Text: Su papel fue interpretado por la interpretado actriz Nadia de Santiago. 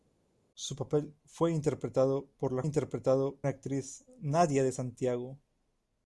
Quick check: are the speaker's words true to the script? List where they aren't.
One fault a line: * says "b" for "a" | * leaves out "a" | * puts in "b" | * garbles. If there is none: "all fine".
all fine